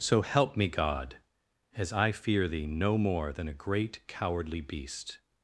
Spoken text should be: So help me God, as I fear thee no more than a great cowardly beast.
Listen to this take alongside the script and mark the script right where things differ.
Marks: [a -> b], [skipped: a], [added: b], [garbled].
So help me God, as I fear thee no more than a great cowardly beast.